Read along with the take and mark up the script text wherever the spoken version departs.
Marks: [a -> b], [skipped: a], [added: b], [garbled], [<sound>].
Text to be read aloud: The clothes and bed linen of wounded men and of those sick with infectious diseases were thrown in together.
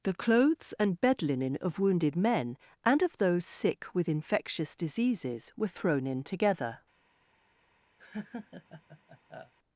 The clothes and bed linen of wounded men and of those sick with infectious diseases were thrown in together. [laugh]